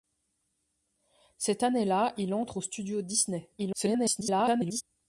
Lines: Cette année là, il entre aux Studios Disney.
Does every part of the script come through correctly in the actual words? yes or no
no